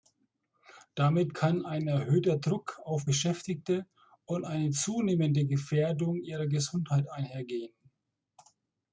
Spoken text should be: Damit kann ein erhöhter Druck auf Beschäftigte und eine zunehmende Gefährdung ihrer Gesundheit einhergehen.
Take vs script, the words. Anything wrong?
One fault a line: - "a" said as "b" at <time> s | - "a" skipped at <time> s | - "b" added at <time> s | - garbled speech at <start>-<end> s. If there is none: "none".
none